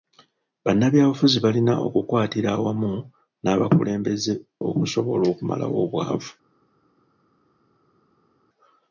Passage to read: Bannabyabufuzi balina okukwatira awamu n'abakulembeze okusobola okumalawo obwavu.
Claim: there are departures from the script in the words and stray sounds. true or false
false